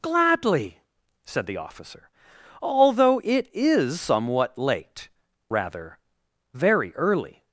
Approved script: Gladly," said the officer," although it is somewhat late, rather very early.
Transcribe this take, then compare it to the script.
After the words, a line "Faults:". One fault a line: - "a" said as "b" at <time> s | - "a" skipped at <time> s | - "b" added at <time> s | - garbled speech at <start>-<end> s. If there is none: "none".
Gladly," said the officer," although it is somewhat late, rather very early.
Faults:
none